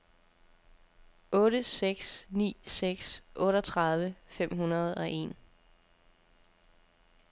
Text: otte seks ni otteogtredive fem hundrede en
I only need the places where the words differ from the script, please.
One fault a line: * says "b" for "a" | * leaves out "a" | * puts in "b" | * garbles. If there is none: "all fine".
* puts in "seks"
* puts in "og"